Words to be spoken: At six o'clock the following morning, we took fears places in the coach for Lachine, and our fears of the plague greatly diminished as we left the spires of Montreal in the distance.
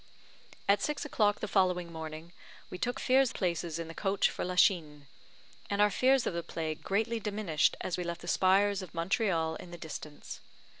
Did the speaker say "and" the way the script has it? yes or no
yes